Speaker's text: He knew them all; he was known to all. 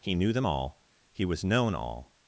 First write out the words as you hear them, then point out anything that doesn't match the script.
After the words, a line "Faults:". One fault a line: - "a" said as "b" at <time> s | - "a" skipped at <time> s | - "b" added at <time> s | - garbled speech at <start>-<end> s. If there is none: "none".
He knew them all; he was known all.
Faults:
- "to" skipped at 1.7 s